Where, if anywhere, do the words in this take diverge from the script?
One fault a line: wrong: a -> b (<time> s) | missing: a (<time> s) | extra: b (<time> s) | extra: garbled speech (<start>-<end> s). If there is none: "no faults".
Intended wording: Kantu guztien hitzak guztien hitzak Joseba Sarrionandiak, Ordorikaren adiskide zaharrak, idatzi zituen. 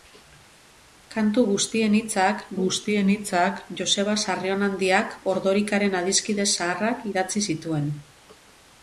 no faults